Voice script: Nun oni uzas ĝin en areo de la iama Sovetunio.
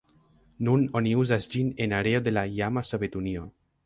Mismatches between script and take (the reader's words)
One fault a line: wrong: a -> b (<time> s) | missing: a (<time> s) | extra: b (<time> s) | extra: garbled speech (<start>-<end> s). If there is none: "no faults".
no faults